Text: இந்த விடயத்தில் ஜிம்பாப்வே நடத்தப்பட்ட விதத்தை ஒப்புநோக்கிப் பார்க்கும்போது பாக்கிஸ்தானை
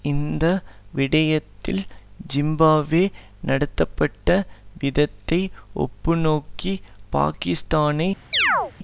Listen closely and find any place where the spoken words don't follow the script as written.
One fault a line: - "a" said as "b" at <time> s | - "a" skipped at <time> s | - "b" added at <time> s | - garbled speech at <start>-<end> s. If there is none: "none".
- "பார்க்கும்போது" skipped at 6.8 s